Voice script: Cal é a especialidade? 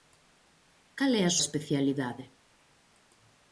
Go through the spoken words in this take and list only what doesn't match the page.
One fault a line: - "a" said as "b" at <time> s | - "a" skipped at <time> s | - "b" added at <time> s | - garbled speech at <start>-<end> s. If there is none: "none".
none